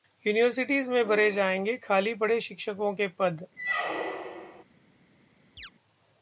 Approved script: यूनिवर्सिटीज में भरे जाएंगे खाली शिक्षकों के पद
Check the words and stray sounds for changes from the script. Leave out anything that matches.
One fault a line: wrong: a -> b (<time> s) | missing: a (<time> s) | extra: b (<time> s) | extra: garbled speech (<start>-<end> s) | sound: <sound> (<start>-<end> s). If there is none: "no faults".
extra: पड़े (2.1 s)
sound: squeak (3.6-4.6 s)
sound: chirp (5.6-5.7 s)